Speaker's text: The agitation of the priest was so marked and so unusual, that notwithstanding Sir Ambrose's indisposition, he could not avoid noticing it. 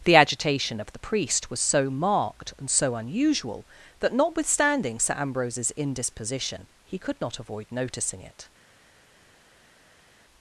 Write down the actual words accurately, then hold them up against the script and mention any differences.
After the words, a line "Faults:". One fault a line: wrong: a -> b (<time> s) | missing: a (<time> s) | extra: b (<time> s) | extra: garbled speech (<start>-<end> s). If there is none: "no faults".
The agitation of the priest was so marked and so unusual, that notwithstanding Sir Ambrose's indisposition, he could not avoid noticing it.
Faults:
no faults